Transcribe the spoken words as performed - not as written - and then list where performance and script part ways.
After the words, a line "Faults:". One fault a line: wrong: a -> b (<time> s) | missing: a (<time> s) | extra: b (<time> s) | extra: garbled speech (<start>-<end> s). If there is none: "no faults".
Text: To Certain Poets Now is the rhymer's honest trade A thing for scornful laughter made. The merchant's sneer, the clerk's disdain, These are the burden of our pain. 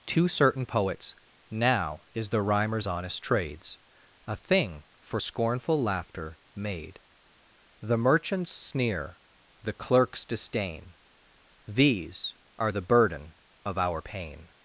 To Certain Poets Now is the rhymer's honest trades A thing for scornful laughter made. The merchant's sneer, the clerk's disdain, These are the burden of our pain.
Faults:
wrong: trade -> trades (3.2 s)